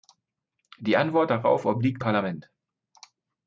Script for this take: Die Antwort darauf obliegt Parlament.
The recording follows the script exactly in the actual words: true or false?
true